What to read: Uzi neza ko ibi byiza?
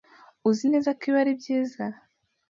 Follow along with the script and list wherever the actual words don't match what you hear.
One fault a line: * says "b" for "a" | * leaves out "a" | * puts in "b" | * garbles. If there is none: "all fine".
* puts in "ari"